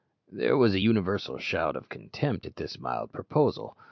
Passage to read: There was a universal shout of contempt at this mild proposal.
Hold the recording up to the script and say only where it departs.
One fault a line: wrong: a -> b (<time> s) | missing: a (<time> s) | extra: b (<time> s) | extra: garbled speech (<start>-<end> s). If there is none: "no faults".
no faults